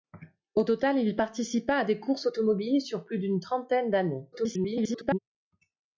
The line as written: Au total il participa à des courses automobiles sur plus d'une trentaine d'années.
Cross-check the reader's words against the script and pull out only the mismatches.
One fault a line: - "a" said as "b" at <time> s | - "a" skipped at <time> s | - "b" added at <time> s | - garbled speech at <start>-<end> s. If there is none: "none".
- garbled speech at 4.3-5.2 s